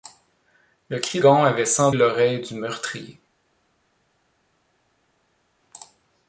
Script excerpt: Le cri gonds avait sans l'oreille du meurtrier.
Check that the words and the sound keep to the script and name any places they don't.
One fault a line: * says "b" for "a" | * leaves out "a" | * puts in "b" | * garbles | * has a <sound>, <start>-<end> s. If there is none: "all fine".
all fine